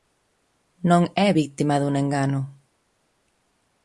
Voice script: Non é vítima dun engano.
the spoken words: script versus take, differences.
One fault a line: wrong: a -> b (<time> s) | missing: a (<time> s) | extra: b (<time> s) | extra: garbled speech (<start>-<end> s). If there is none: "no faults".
no faults